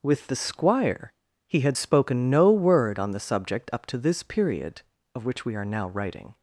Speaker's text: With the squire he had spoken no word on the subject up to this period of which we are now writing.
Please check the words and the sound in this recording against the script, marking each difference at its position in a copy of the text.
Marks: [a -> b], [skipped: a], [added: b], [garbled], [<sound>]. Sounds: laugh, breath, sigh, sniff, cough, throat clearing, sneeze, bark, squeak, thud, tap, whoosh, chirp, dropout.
With the squire he had spoken no word on the subject up to this period of which we are now writing.